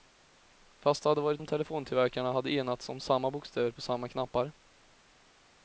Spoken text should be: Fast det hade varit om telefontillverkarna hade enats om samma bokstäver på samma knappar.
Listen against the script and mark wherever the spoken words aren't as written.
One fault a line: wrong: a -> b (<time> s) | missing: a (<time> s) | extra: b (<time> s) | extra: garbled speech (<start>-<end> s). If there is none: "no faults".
no faults